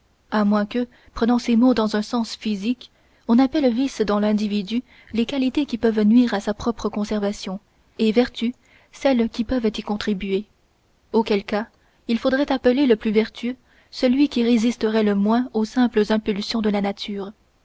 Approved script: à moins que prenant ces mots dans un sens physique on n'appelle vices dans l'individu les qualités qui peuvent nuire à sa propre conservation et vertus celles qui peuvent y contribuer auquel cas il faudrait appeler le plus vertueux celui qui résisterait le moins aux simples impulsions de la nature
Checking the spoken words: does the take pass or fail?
pass